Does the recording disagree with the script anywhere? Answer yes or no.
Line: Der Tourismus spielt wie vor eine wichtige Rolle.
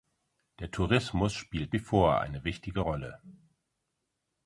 no